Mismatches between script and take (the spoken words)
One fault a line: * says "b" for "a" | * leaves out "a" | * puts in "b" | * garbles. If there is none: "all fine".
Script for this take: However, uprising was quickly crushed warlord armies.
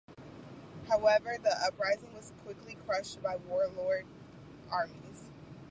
* puts in "the"
* puts in "by"